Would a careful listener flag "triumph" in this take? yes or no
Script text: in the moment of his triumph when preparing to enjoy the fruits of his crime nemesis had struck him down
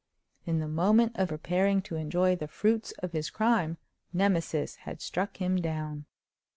yes